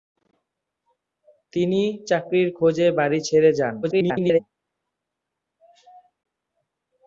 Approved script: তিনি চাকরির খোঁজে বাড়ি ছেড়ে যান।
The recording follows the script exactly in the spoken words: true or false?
false